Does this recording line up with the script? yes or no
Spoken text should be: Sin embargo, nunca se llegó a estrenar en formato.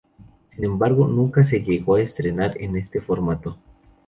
no